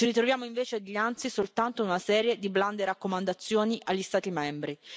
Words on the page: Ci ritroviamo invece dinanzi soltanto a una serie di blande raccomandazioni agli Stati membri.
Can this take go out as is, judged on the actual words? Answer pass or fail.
pass